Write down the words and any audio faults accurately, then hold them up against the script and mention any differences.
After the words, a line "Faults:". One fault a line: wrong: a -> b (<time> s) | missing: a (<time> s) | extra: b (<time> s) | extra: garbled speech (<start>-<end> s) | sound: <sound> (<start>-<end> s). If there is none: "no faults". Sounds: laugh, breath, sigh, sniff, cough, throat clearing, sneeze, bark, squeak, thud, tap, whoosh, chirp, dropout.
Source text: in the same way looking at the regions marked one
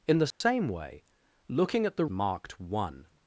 in the same way looking at the marked one
Faults:
sound: dropout (0.3-0.4 s)
missing: regions (2.0 s)